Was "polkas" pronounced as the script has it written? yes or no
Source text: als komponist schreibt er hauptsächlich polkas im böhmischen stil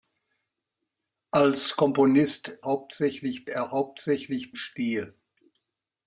no